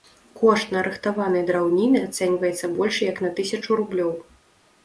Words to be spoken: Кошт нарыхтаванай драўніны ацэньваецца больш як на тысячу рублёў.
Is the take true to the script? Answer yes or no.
yes